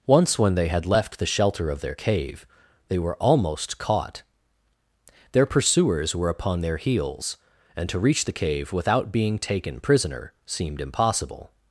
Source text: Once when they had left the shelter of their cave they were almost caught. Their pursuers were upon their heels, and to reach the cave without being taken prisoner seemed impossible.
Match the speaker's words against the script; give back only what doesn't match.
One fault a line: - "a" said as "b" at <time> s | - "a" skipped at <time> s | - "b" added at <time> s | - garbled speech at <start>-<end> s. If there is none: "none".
none